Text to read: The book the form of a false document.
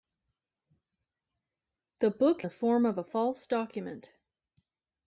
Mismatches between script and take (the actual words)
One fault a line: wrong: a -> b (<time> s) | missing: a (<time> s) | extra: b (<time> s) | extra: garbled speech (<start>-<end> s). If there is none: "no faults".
no faults